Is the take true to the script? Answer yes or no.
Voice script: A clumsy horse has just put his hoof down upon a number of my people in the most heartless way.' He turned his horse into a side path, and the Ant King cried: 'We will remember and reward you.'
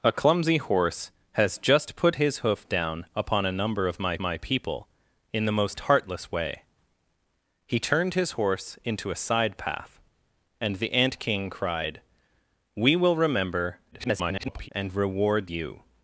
no